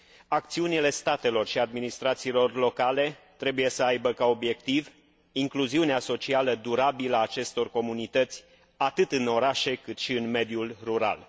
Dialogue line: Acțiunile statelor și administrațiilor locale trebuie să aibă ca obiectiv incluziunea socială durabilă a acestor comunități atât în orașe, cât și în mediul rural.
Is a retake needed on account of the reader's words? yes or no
no